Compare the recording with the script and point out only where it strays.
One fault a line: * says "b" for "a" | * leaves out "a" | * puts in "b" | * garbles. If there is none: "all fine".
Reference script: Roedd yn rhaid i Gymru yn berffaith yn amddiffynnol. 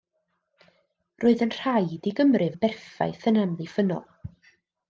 all fine